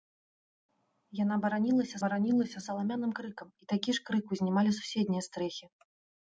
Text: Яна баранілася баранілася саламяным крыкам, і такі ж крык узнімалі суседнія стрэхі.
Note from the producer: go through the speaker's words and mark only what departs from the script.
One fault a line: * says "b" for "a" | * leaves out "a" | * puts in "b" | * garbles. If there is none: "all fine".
all fine